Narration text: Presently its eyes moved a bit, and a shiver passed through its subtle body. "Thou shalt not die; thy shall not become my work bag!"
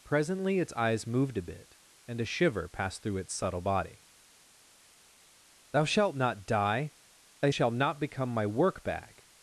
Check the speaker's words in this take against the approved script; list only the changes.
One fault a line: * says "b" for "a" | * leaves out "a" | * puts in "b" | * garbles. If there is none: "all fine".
all fine